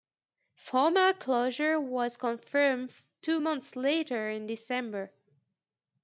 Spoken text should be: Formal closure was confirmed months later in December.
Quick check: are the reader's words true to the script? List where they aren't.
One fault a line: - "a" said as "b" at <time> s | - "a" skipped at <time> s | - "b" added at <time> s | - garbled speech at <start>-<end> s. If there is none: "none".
- "two" added at 3.2 s